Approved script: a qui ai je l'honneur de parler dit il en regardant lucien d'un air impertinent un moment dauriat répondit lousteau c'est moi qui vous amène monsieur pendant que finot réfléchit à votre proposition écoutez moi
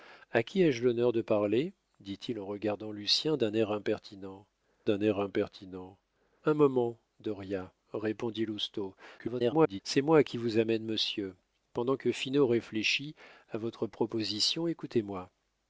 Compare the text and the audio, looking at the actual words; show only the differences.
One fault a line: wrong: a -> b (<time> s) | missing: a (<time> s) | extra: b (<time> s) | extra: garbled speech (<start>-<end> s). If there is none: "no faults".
extra: d'un air impertinent (4.8 s)
extra: garbled speech (9.2-9.8 s)